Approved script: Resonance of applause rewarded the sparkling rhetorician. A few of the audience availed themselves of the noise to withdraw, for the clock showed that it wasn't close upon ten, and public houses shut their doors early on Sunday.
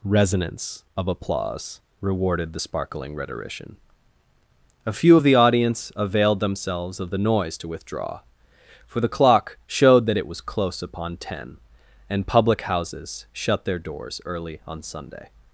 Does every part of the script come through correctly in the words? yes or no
no